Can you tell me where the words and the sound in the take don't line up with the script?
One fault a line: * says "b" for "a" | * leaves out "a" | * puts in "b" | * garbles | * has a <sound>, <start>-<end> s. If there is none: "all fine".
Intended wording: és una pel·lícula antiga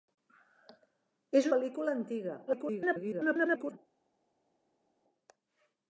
* leaves out "una"
* garbles